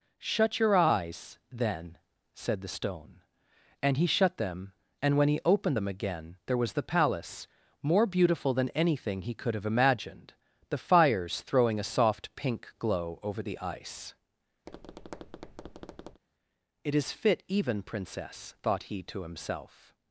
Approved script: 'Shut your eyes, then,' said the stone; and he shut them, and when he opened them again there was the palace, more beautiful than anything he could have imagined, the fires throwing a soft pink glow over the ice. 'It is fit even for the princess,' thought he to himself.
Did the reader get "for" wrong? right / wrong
wrong